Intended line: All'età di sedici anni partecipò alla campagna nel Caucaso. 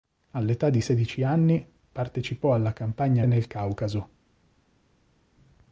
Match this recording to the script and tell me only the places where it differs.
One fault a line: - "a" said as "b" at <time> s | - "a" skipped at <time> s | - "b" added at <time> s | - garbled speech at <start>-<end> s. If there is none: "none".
none